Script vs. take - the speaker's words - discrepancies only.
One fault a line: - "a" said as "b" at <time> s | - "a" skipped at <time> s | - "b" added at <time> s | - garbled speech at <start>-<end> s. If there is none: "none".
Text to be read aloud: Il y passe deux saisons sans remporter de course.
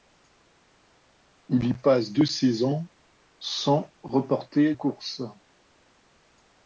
- "de" skipped at 4.7 s